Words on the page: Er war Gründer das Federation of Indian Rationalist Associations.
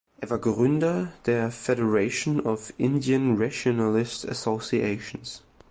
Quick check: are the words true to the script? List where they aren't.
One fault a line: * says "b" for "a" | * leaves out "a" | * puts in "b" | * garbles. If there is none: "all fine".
* says "der" for "das"